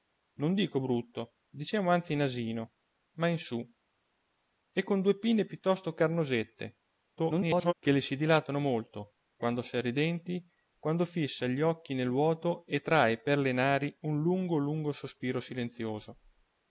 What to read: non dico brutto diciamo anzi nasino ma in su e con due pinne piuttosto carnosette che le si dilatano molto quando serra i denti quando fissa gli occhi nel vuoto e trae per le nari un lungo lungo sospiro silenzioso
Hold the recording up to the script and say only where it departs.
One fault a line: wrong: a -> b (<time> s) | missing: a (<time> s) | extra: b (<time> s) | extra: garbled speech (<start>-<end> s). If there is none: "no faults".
extra: garbled speech (7.2-7.7 s)